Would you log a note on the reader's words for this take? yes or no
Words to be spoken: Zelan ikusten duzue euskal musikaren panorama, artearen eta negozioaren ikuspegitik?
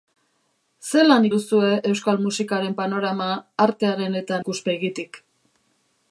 yes